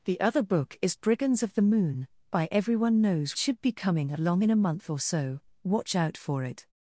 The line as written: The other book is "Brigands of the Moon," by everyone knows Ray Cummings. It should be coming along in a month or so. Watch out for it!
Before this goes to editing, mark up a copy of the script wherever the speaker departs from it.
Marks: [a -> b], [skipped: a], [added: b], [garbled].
The other book is "Brigands of the Moon," by everyone knows [skipped: Ray Cummings. It] should be coming along in a month or so. Watch out for it!